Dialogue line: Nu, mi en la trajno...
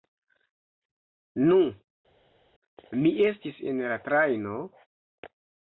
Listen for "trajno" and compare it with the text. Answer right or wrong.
right